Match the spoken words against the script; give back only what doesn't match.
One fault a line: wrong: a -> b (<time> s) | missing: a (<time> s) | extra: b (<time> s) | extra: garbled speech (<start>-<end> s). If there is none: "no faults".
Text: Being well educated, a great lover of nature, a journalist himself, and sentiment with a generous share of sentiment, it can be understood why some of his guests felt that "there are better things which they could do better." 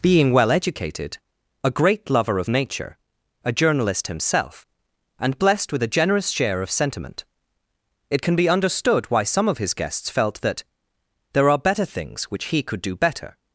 wrong: sentiment -> blessed (5.4 s)
wrong: they -> he (12.5 s)